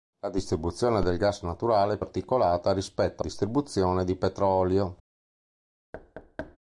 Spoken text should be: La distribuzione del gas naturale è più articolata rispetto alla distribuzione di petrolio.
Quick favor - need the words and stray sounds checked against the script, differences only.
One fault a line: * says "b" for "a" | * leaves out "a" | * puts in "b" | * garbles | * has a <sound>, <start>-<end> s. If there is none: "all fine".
* leaves out "più"
* leaves out "alla"
* has a thud, 5.9-6.6 s